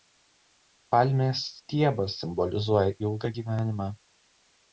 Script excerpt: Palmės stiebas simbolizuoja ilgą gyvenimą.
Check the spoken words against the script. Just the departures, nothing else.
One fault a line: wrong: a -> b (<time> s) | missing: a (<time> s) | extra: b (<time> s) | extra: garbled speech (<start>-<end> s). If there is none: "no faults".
no faults